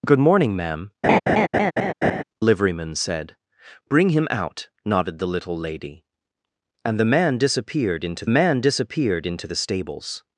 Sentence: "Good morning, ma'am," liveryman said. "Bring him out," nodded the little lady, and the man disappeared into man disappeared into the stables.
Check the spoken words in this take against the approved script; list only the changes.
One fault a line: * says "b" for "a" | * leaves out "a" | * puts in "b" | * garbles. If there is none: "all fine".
all fine